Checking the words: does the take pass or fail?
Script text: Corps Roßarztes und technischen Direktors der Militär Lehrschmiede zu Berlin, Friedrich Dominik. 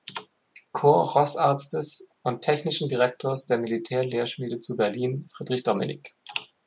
pass